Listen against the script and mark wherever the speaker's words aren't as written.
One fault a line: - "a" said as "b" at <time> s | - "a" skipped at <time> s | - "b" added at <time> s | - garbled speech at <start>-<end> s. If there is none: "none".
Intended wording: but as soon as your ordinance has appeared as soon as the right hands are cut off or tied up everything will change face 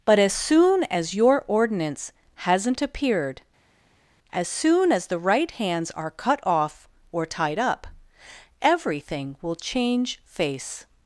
- "has" said as "hasn't" at 2.4 s